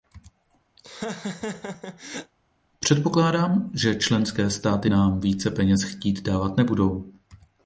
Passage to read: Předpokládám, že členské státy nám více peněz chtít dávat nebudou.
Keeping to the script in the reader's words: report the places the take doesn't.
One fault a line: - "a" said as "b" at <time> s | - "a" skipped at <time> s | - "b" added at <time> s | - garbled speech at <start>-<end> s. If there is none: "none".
none